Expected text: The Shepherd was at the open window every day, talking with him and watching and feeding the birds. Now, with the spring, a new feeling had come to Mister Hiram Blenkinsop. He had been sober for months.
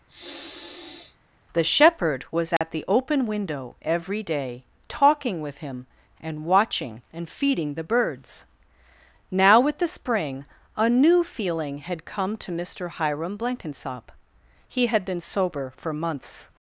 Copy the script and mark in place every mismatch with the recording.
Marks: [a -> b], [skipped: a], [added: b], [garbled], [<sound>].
[sniff] The Shepherd was at [dropout] the open window every day, talking with him and watching and feeding the birds. Now, with the spring, a new feeling had come to Mister Hiram Blenkinsop. He had been sober for months.